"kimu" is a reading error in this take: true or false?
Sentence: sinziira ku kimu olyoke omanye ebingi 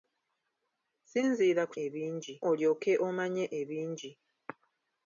true